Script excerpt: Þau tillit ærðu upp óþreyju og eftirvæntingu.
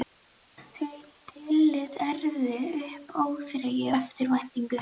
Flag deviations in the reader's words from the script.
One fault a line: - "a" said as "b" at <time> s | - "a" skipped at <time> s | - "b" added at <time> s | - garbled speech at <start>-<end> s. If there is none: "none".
- "og" skipped at 3.9 s